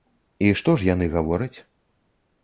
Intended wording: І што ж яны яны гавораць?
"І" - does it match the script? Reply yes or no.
yes